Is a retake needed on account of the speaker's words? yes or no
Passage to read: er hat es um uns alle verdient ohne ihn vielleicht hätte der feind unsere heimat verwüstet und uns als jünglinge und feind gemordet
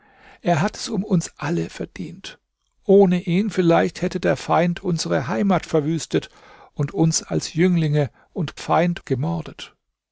no